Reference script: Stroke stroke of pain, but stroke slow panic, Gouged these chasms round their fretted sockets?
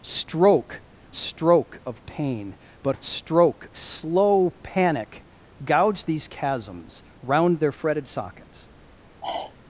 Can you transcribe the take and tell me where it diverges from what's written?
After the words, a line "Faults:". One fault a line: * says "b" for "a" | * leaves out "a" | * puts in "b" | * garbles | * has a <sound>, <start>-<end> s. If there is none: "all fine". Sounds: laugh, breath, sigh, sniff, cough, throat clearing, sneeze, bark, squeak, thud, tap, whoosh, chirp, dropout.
Stroke stroke of pain, but stroke slow panic, Gouged these chasms round their fretted sockets?
Faults:
* has a sigh, 9.2-9.6 s